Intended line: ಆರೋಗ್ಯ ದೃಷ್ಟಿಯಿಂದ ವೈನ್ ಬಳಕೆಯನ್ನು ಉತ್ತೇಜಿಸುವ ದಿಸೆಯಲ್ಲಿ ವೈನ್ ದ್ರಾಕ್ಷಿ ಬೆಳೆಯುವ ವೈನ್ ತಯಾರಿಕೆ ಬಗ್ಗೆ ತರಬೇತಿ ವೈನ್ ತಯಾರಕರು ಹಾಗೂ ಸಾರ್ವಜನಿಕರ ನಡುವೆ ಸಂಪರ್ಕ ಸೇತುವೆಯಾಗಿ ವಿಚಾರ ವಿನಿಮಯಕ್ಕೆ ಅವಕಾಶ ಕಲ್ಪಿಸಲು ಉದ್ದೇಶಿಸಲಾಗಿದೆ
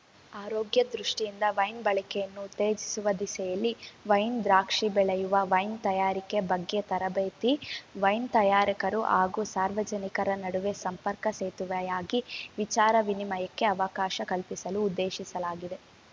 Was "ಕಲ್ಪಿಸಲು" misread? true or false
false